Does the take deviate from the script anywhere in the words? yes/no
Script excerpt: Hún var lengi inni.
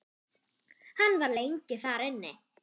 yes